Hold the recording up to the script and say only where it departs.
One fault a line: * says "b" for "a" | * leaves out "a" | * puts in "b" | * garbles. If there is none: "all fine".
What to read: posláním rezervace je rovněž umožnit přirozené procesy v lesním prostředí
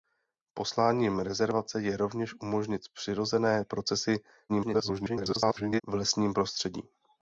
* garbles